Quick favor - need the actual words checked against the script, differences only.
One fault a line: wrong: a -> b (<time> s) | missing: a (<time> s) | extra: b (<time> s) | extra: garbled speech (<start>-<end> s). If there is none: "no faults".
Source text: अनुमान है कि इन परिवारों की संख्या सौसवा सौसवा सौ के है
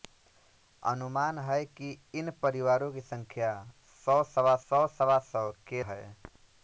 no faults